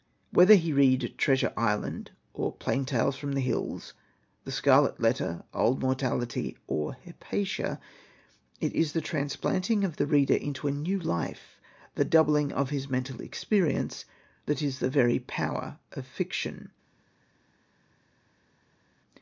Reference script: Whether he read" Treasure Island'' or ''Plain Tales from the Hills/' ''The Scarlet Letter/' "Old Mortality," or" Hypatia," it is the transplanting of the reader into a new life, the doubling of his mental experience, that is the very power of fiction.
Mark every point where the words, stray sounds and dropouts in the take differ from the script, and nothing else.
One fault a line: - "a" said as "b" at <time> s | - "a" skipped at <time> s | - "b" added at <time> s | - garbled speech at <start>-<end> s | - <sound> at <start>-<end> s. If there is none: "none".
none